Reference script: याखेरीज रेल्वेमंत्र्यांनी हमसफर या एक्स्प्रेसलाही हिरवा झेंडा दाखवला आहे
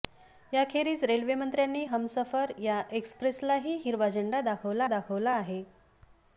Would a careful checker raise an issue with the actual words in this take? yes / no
yes